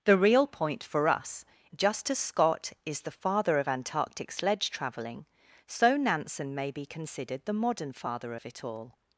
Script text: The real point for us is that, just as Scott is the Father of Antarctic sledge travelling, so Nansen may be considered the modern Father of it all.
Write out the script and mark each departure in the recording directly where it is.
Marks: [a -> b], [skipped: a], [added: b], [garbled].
The real point for us [skipped: is that,] just as Scott is the Father of Antarctic sledge travelling, so Nansen may be considered the modern Father of it all.